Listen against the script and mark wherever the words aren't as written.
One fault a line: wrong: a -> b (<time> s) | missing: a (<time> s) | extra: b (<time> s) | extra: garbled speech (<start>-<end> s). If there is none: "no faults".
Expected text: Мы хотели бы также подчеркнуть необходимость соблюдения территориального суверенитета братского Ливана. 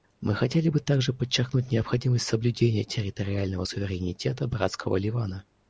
no faults